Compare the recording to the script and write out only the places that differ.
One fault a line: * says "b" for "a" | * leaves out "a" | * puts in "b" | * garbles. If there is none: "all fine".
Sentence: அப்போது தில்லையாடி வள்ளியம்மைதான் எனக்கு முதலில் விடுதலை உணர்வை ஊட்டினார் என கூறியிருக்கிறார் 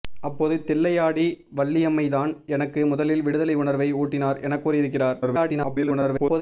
* garbles